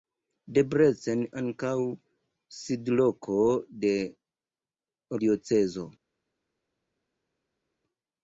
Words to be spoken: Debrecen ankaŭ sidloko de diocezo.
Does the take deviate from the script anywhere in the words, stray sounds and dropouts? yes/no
no